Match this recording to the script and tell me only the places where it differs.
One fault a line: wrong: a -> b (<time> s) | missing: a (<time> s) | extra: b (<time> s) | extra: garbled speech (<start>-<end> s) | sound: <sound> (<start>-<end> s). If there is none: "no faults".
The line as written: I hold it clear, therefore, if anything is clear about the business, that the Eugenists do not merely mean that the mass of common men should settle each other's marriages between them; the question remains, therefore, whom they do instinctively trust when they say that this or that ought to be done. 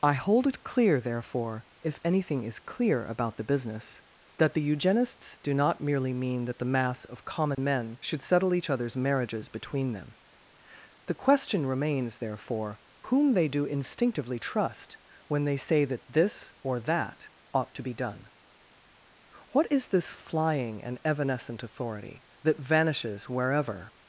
sound: dropout (7.5-7.6 s)
extra: What is this flying and evanescent authority that vanishes wherever (19.5 s)